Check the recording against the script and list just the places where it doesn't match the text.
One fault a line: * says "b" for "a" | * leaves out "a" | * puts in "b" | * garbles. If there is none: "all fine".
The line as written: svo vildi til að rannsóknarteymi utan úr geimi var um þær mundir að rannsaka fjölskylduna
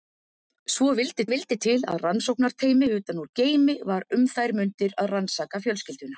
* puts in "vildi"